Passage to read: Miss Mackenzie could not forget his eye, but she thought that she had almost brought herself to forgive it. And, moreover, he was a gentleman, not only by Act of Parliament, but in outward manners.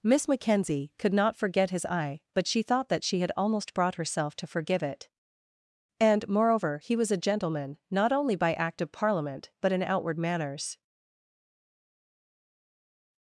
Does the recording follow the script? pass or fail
pass